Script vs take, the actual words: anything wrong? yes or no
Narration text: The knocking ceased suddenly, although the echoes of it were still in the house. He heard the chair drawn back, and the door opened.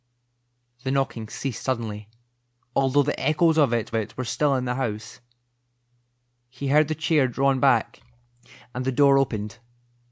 yes